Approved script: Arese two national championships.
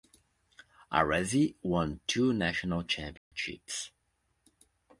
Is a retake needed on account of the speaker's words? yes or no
yes